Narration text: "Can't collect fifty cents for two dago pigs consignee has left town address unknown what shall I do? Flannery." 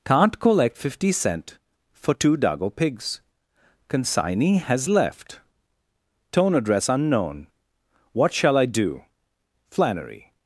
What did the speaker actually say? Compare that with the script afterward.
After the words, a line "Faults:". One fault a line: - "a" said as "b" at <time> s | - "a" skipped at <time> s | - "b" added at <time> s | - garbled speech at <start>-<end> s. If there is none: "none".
"Can't collect fifty cent for two dago pigs consignee has left tone address unknown what shall I do? Flannery."
Faults:
- "cents" said as "cent" at 1.1 s
- "town" said as "tone" at 6.3 s